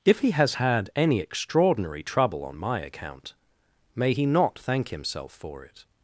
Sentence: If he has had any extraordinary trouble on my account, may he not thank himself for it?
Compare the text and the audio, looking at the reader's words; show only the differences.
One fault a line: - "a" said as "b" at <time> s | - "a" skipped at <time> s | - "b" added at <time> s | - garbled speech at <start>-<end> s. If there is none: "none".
none